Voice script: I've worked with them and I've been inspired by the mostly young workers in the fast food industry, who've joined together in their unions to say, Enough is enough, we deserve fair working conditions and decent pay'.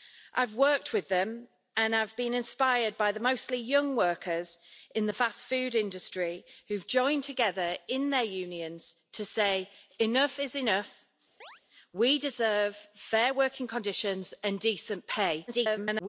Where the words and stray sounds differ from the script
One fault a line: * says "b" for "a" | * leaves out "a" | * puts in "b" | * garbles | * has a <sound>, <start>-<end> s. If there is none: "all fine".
* has a chirp, 11.4-11.6 s
* garbles